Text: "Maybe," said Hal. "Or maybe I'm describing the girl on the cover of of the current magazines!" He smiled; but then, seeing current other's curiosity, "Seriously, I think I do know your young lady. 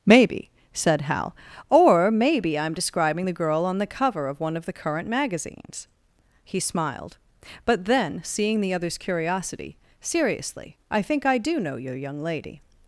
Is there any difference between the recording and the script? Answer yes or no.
yes